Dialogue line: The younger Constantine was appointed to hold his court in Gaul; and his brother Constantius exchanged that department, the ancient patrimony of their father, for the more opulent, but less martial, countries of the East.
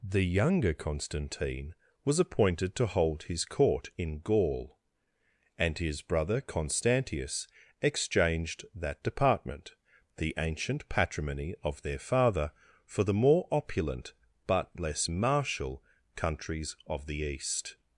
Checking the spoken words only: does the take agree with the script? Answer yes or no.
yes